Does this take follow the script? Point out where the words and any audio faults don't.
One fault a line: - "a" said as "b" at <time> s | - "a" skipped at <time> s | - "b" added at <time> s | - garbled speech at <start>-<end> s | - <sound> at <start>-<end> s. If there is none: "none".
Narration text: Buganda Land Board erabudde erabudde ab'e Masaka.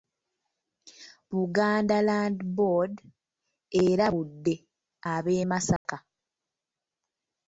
- "erabudde" skipped at 4.5 s
- dropout at 5.8-5.9 s